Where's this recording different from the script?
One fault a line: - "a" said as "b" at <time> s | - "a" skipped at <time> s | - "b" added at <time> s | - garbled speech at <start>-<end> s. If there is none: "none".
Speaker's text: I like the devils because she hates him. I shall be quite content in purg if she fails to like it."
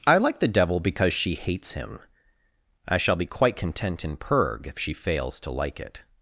- "devils" said as "devil" at 0.5 s